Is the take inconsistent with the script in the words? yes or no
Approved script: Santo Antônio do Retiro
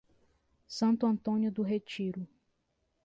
no